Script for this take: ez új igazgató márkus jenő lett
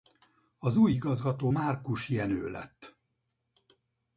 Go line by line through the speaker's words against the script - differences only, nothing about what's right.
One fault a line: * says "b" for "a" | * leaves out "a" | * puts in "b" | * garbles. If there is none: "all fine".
* says "az" for "ez"